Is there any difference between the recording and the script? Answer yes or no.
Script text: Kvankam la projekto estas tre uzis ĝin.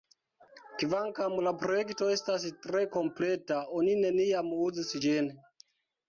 yes